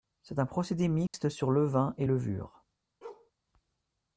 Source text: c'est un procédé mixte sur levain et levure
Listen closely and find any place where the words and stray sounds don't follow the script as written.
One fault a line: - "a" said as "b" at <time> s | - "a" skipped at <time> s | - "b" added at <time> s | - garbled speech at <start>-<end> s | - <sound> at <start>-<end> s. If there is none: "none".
- dropout at 1.1-1.1 s
- bark at 3.0-3.3 s